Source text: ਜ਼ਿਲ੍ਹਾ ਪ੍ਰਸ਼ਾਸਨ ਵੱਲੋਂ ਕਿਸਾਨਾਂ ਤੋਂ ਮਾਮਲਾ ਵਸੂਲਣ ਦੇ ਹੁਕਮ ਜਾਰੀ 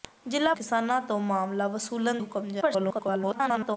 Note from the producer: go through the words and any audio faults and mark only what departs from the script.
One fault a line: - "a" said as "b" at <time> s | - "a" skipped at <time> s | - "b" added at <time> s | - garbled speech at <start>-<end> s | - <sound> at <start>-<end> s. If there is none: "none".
- "ਪ੍ਰਸ਼ਾਸਨ ਵੱਲੋਂ" skipped at 0.5 s
- "ਦੇ" skipped at 2.2 s
- garbled speech at 2.6-3.8 s